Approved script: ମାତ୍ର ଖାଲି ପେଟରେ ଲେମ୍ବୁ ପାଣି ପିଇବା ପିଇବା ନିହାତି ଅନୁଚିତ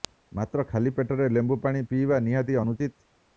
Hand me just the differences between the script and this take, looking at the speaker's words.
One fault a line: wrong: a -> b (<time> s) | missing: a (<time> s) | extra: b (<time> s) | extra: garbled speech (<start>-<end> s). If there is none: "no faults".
missing: ପିଇବା (2.2 s)